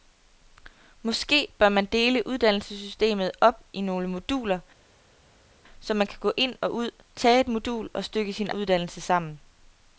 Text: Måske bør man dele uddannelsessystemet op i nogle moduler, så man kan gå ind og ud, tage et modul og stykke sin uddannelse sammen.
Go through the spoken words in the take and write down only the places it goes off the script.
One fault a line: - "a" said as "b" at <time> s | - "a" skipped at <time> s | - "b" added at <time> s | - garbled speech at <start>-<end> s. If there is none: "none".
none